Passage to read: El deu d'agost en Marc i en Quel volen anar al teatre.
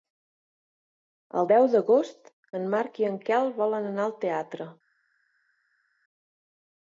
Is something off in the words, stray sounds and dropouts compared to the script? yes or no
no